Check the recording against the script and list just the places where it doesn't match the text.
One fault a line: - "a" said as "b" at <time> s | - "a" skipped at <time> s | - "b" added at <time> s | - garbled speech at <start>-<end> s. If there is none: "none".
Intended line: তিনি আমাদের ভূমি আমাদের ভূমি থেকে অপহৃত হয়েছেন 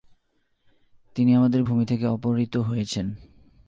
- "আমাদের ভূমি" skipped at 1.8 s